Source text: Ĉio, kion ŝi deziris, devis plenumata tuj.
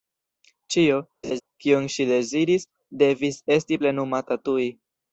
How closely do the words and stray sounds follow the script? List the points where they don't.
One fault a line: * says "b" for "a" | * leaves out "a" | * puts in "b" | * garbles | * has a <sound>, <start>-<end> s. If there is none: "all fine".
* has a laugh, 1.2-1.4 s
* puts in "esti"